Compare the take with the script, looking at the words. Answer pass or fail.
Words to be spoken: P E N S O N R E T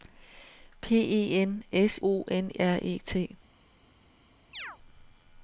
pass